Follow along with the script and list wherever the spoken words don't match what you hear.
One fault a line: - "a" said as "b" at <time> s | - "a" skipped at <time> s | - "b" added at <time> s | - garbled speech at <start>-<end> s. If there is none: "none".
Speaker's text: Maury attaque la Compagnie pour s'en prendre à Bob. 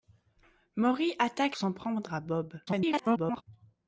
- "la Compagnie pour" skipped at 1.6 s
- garbled speech at 2.7-3.4 s